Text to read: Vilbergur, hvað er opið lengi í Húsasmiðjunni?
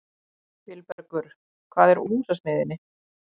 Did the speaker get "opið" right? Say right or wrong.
wrong